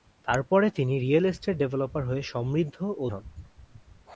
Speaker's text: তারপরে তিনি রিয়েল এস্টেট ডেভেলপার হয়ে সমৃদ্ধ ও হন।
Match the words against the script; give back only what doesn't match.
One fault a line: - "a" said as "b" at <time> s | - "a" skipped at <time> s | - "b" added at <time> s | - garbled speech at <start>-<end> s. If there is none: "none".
none